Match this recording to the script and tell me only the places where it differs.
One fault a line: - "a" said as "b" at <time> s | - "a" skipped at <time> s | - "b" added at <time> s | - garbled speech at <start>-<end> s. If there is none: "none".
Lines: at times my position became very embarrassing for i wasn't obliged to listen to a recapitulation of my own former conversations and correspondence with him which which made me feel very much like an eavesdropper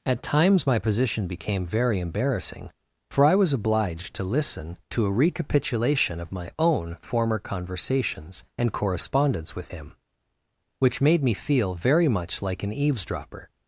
- "wasn't" said as "was" at 3.4 s
- "which" skipped at 11.0 s